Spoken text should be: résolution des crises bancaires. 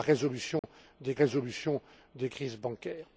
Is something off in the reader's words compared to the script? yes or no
yes